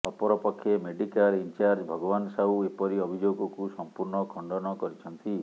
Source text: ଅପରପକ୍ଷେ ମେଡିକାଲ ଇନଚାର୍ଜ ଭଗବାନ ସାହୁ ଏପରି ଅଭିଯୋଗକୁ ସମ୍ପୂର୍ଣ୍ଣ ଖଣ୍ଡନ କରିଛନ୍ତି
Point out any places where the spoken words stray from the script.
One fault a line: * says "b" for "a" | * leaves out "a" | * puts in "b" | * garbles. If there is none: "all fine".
all fine